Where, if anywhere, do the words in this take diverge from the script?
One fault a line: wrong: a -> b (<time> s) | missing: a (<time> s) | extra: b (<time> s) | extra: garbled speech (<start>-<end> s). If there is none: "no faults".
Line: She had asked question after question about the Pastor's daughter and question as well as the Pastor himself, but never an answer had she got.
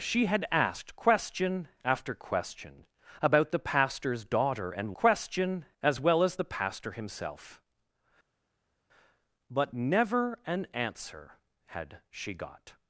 no faults